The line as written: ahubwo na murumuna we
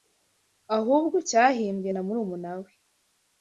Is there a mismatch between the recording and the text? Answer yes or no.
yes